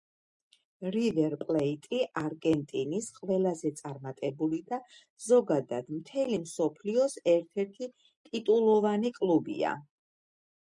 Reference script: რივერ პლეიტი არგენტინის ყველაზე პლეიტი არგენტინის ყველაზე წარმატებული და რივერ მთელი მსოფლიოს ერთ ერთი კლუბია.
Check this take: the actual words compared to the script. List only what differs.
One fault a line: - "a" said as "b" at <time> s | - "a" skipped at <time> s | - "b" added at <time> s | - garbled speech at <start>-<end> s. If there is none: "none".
- "პლეიტი არგენტინის ყველაზე" skipped at 3.7 s
- "რივერ" said as "ზოგადად" at 5.3 s
- "ტიტულოვანი" added at 8.3 s